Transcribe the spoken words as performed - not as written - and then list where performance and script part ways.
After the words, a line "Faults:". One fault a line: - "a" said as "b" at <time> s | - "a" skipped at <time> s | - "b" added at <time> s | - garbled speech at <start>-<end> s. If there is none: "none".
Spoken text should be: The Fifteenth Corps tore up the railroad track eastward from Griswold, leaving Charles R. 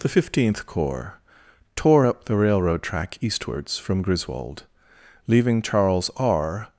The Fifteenth Corps tore up the railroad track eastwards from Griswold, leaving Charles R.
Faults:
- "eastward" said as "eastwards" at 3.2 s